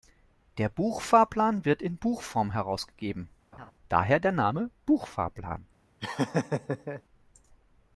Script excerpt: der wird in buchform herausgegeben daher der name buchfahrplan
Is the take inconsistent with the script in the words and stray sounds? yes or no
yes